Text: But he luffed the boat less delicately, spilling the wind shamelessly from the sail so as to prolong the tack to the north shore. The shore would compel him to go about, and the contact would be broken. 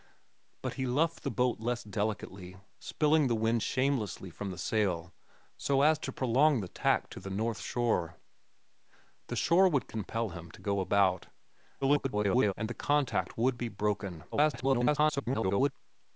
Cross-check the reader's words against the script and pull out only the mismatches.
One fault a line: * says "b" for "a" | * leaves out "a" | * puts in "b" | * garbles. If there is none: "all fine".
* garbles
* garbles